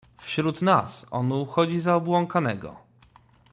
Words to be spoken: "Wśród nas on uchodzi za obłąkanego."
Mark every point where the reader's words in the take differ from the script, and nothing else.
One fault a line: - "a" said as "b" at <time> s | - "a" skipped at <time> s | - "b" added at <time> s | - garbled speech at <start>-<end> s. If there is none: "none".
none